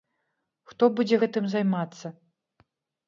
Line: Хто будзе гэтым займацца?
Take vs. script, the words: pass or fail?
pass